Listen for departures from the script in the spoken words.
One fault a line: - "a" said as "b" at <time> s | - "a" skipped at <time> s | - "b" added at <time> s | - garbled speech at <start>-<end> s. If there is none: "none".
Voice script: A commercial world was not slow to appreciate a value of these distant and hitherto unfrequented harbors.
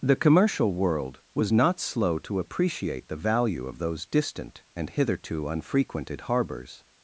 - "A" said as "The" at 0.0 s
- "a" said as "the" at 3.1 s
- "these" said as "those" at 3.8 s